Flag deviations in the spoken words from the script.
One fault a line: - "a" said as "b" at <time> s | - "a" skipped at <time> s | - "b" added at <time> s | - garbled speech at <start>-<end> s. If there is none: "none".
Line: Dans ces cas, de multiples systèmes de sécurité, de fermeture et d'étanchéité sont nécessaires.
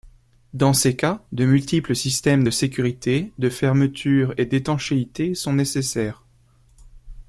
none